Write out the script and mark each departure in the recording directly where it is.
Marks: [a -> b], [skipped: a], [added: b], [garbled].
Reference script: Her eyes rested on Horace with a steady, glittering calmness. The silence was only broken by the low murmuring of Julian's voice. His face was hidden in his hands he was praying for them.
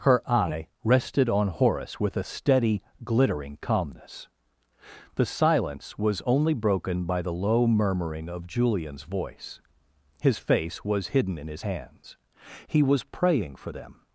Her [eyes -> eye] rested on Horace with a steady, glittering calmness. The silence was only broken by the low murmuring of Julian's voice. His face was hidden in his hands he was praying for them.